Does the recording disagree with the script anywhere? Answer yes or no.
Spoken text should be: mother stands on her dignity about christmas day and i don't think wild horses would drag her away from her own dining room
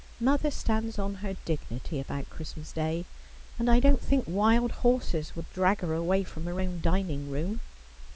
no